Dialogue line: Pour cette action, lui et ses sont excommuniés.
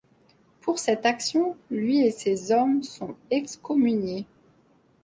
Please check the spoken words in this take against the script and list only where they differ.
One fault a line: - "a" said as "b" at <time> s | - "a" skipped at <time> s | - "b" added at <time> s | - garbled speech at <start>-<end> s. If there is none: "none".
- "hommes" added at 2.5 s